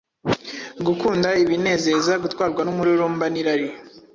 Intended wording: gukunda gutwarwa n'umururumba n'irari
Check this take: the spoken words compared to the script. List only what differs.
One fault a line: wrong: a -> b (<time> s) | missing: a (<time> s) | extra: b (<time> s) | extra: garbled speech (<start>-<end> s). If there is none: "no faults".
extra: ibinezeza (1.4 s)